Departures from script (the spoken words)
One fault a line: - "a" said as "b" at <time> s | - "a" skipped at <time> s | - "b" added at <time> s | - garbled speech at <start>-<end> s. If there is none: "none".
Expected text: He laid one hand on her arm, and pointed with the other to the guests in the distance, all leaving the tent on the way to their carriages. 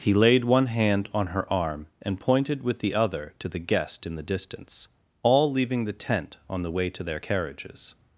- "guests" said as "guest" at 3.6 s